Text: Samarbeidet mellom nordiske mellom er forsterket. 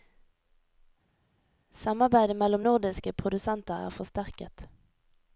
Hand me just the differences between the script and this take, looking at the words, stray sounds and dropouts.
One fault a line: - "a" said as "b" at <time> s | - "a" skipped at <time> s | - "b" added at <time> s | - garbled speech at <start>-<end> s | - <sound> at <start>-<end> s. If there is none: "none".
- "mellom" said as "produsenter" at 3.1 s